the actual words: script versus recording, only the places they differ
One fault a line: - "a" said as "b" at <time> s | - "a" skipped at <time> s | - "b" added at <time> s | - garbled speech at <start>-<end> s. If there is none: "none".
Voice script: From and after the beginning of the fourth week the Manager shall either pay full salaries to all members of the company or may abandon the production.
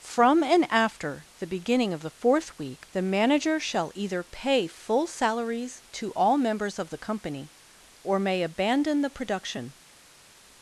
none